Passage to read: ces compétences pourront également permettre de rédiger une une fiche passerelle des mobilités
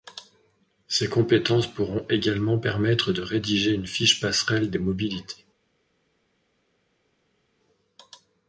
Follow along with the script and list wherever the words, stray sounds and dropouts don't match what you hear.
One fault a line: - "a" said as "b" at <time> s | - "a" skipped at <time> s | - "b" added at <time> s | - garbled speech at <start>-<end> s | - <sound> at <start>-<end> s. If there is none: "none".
- "une" skipped at 3.9 s